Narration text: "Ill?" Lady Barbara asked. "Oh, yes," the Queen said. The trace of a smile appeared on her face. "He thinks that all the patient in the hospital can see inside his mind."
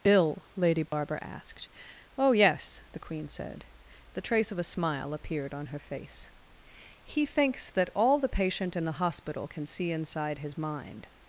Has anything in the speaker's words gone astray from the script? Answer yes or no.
no